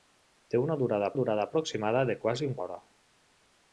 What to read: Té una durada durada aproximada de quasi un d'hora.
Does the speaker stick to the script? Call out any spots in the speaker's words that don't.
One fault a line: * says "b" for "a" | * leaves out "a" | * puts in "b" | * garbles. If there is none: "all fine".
all fine